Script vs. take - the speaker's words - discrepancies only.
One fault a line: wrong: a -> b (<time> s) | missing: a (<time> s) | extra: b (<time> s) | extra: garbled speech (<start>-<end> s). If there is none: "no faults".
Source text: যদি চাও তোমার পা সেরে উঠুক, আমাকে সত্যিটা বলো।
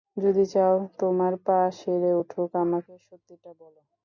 no faults